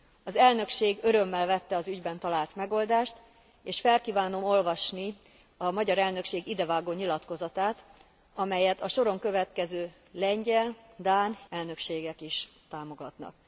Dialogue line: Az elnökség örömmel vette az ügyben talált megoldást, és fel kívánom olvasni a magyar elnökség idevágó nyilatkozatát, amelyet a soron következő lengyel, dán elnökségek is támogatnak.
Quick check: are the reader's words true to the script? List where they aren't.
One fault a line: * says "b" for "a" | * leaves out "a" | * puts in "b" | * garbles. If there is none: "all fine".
all fine